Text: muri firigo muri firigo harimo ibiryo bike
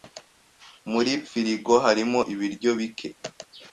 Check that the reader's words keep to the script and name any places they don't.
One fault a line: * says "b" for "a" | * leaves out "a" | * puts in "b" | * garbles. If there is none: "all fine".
* leaves out "muri firigo"